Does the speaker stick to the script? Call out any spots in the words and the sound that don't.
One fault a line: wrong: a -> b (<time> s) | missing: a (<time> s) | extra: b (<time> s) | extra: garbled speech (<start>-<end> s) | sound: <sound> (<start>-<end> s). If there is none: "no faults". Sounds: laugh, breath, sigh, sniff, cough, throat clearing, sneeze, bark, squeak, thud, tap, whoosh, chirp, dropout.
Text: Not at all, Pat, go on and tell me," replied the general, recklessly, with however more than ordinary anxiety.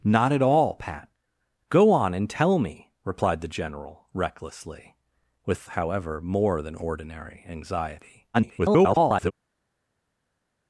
extra: garbled speech (8.3-9.3 s)